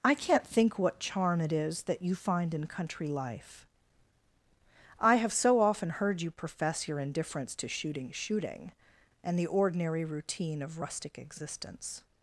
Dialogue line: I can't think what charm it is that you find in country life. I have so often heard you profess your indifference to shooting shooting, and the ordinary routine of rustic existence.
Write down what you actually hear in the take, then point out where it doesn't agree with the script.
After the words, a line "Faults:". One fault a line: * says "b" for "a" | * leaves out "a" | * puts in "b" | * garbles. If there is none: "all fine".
I can't think what charm it is that you find in country life. I have so often heard you profess your indifference to shooting shooting, and the ordinary routine of rustic existence.
Faults:
all fine